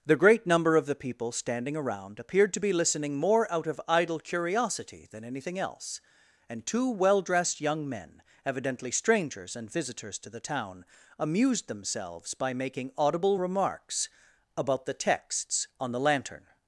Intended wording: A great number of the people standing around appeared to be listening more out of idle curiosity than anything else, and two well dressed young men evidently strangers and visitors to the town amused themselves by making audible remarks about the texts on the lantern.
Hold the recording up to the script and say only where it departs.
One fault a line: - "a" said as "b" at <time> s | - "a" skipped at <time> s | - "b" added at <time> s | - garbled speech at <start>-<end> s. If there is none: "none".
- "A" said as "The" at 0.0 s